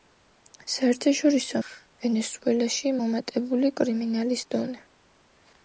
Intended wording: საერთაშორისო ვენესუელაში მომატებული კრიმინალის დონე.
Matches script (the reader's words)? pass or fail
pass